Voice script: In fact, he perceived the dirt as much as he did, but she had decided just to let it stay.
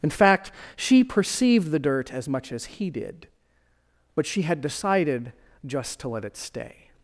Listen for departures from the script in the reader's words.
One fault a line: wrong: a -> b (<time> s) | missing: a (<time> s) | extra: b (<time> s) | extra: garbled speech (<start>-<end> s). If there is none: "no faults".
wrong: he -> she (0.8 s)